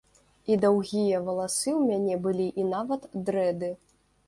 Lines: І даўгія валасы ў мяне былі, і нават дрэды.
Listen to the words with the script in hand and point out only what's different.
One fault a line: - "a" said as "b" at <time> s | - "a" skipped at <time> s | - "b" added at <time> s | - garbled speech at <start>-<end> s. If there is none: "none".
none